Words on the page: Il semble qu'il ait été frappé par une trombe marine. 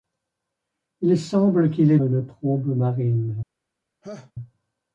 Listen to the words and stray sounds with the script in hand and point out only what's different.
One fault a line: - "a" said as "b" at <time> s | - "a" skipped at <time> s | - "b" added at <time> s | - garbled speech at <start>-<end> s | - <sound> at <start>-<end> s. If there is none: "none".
- "été frappé par" skipped at 2.0 s
- laugh at 4.0-4.3 s